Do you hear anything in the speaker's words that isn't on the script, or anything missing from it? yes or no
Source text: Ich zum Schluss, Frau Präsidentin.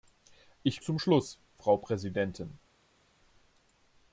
no